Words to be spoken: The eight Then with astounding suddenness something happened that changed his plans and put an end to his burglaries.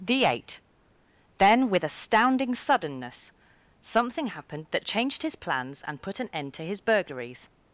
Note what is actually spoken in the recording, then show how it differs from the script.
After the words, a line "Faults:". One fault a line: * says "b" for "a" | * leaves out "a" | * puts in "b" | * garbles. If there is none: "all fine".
The eight Then with astounding suddenness something happened that changed his plans and put an end to his burglaries.
Faults:
all fine